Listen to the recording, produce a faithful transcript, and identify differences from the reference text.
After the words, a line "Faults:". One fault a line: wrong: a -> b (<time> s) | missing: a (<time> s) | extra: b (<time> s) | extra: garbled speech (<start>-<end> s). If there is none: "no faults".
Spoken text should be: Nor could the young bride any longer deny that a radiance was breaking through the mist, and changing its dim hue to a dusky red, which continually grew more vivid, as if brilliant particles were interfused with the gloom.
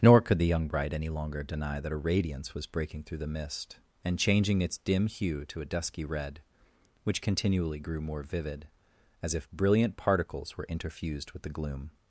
Nor could the young bride any longer deny that a radiance was breaking through the mist, and changing its dim hue to a dusky red, which continually grew more vivid, as if brilliant particles were interfused with the gloom.
Faults:
no faults